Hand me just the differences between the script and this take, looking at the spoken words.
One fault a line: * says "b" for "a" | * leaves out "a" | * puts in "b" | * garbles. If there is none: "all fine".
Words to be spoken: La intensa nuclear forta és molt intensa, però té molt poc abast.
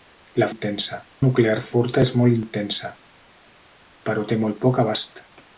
all fine